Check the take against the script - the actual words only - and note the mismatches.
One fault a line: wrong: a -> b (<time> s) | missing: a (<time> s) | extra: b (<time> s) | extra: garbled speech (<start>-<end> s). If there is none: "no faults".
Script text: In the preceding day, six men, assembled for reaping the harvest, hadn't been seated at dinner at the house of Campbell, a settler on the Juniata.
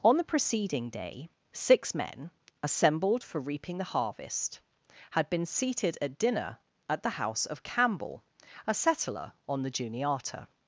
wrong: In -> On (0.0 s)
wrong: hadn't -> had (5.1 s)